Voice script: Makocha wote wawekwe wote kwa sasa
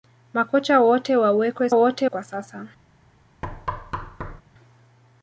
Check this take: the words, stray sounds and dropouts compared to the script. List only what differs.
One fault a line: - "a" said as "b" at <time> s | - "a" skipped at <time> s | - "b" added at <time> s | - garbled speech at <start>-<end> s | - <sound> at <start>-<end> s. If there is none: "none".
- thud at 3.4-4.4 s